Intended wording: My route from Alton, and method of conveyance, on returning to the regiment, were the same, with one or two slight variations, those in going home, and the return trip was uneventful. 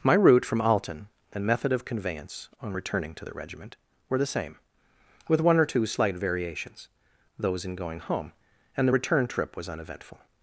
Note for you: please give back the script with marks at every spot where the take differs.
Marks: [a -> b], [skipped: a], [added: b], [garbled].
My route from Alton, and method of conveyance, on returning to the regiment, were the same, with one or two slight variations, those in going home, and the return trip was uneventful.